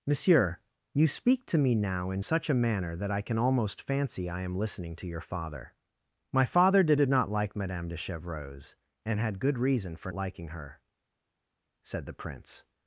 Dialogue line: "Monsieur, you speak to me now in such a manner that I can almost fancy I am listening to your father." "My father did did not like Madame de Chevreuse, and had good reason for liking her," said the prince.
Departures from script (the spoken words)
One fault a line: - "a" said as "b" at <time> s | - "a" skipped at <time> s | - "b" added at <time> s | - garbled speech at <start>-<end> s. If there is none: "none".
none